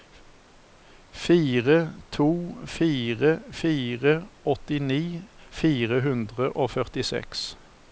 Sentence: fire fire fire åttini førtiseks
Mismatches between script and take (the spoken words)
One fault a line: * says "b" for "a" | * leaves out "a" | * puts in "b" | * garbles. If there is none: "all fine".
* puts in "to"
* puts in "fire hundre og"